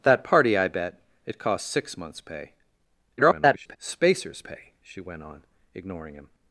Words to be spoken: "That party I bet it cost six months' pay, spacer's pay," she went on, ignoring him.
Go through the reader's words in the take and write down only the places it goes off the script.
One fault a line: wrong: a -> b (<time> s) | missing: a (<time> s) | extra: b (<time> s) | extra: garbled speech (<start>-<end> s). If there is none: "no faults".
extra: garbled speech (3.2-3.8 s)